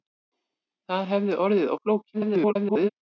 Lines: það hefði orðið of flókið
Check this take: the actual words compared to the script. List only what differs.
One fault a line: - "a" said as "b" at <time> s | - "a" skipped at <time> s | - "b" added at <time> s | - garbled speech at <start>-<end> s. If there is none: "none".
- garbled speech at 2.1-2.9 s